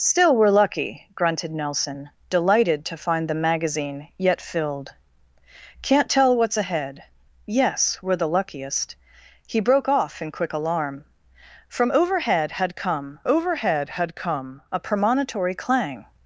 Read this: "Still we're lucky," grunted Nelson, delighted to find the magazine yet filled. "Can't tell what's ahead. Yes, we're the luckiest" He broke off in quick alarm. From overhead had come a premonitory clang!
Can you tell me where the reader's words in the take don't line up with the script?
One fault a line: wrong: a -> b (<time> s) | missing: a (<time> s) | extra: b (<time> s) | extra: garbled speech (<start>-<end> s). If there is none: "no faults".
extra: overhead had come (13.2 s)